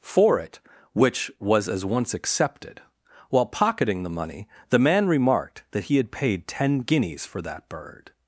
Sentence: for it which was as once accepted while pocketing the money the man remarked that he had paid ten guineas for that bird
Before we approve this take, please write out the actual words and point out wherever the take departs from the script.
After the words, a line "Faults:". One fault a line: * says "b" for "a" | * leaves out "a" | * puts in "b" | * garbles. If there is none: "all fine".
for it which was as once accepted while pocketing the money the man remarked that he had paid ten guineas for that bird
Faults:
all fine